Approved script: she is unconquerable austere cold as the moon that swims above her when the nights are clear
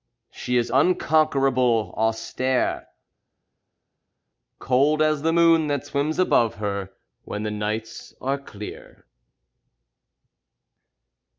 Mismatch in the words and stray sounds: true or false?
false